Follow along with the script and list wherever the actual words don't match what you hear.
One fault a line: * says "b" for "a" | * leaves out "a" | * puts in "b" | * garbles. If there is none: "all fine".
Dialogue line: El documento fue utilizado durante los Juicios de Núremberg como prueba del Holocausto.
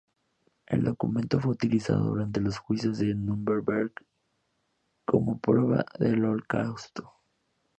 all fine